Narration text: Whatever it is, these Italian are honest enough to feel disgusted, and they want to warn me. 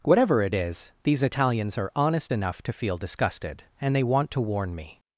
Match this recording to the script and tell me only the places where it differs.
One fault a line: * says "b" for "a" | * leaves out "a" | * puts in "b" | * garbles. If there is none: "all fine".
* says "Italians" for "Italian"